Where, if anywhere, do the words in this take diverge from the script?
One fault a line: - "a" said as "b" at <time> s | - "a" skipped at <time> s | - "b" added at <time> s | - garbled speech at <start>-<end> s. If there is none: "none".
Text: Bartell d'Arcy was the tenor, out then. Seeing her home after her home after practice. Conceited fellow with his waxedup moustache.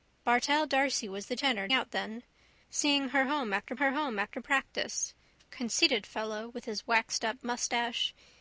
none